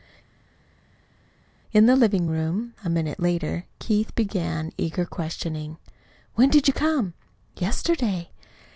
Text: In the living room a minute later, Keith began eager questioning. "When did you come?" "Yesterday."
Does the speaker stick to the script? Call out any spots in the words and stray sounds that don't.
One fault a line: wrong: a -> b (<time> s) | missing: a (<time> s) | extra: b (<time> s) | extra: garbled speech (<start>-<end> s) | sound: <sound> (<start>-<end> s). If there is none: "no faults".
no faults